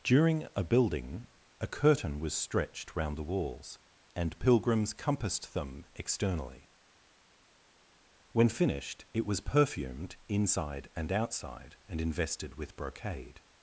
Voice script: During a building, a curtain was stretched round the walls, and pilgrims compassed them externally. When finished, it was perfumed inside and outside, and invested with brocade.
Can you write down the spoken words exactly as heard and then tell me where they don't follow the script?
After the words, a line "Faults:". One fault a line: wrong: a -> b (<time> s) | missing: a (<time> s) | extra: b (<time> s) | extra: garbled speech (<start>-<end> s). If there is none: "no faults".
During a building, a curtain was stretched round the walls, and pilgrims compassed them externally. When finished, it was perfumed inside and outside, and invested with brocade.
Faults:
no faults